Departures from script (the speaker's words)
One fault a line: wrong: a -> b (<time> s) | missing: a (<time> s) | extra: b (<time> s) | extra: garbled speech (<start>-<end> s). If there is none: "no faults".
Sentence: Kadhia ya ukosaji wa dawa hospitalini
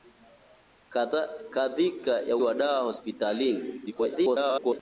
missing: ukosaji (2.4 s)
extra: garbled speech (3.9-4.8 s)